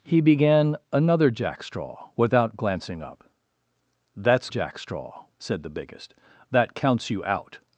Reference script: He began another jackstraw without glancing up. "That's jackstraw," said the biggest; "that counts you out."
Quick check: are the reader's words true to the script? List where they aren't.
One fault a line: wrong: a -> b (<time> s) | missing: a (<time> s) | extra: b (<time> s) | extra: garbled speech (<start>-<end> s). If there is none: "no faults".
no faults